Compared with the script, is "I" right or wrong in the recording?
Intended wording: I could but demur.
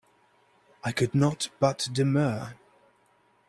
right